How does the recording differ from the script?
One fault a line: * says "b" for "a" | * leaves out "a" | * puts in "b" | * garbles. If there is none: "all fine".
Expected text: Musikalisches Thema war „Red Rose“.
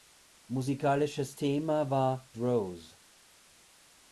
* leaves out "Red"